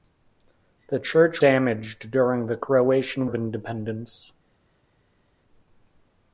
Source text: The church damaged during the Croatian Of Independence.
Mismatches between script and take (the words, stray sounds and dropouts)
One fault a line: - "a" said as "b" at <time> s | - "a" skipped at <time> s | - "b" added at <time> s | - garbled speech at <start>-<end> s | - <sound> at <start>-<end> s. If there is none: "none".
none